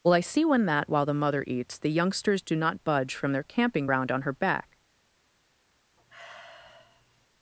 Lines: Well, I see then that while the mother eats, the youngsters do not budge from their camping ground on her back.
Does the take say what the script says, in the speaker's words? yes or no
no